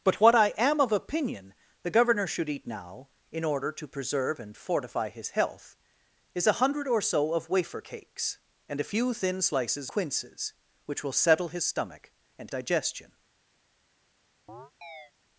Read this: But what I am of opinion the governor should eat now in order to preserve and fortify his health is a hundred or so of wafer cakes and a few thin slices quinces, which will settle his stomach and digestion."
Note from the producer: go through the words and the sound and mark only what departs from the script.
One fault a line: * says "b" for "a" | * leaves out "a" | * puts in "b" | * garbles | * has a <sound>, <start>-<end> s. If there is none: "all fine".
* has a chirp, 14.5-15.1 s